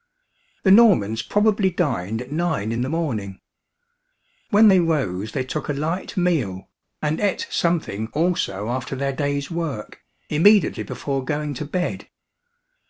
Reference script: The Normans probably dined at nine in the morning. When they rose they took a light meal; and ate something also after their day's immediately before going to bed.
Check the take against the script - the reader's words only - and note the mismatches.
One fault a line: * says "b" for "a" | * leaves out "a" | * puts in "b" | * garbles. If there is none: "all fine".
* puts in "work"